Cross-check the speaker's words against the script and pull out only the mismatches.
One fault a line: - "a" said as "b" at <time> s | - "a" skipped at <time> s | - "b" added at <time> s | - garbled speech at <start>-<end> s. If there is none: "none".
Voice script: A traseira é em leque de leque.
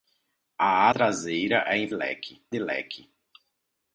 none